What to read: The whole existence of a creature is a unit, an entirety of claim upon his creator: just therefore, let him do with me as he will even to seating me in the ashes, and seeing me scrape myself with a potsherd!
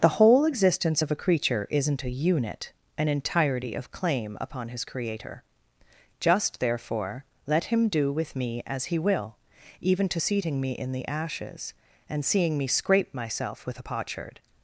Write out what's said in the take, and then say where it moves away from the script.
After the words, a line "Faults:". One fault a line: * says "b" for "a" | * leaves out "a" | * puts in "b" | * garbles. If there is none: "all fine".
The whole existence of a creature isn't a unit, an entirety of claim upon his creator: just therefore, let him do with me as he will even to seating me in the ashes, and seeing me scrape myself with a potsherd!
Faults:
* says "isn't" for "is"